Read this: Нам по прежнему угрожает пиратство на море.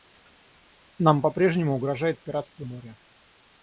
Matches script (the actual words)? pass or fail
fail